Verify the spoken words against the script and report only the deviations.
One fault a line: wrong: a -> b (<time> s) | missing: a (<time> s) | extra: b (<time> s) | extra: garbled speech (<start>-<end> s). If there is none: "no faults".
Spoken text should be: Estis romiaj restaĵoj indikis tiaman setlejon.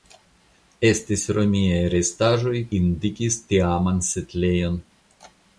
no faults